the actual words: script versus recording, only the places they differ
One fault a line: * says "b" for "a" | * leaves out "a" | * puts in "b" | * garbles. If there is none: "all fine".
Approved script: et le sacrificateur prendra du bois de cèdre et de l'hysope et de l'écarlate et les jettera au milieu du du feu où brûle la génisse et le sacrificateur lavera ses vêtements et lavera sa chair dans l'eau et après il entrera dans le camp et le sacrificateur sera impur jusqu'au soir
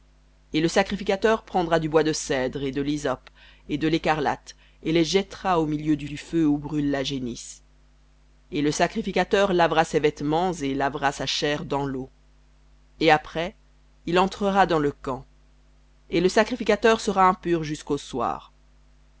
all fine